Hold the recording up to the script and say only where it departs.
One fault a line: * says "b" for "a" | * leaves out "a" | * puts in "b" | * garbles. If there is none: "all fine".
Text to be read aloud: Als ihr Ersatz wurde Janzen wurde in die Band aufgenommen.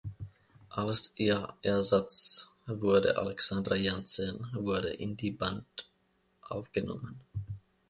* puts in "Alexandra"